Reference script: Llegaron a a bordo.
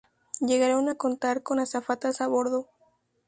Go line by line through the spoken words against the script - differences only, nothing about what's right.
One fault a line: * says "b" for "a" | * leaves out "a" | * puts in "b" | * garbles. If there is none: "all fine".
* puts in "contar con azafatas"